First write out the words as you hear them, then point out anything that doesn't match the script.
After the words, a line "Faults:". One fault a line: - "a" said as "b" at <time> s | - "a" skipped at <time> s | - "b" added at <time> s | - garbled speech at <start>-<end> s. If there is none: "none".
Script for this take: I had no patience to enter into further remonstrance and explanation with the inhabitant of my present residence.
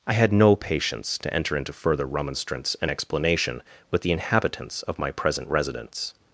I had no patience to enter into further remonstrance and explanation with the inhabitants of my present residence.
Faults:
- "inhabitant" said as "inhabitants" at 4.1 s